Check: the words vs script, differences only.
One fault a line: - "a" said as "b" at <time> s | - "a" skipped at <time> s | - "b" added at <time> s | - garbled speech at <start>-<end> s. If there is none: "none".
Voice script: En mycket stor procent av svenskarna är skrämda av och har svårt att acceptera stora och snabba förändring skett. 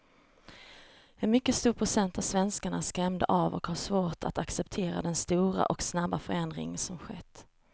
- "den" added at 5.0 s
- "som" added at 6.8 s